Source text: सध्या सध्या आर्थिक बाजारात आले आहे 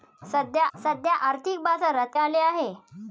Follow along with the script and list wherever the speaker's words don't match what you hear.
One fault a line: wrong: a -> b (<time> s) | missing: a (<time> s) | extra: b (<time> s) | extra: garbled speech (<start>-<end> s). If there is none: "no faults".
no faults